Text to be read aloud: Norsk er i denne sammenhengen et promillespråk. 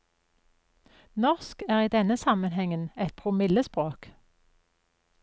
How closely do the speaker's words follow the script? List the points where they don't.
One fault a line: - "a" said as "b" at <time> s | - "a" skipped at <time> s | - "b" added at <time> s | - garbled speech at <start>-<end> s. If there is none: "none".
none